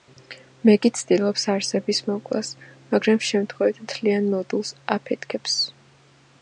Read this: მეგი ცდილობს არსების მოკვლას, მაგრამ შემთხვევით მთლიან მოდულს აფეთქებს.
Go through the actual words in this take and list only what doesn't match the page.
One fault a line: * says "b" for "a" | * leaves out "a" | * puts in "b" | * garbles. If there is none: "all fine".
all fine